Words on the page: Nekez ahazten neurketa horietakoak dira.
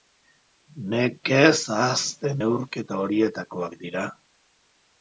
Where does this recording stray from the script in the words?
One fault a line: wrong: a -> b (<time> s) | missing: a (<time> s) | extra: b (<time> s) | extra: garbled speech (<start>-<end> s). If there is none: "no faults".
no faults